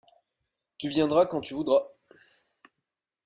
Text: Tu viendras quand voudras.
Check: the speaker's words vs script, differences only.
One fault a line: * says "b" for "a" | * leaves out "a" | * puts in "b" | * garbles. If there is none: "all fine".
* puts in "tu"